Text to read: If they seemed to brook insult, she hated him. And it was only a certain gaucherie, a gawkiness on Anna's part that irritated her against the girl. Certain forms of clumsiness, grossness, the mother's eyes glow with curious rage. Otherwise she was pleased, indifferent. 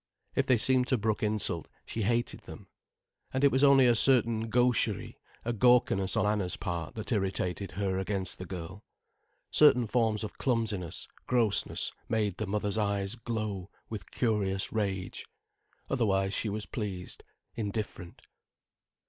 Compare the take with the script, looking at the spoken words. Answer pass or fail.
fail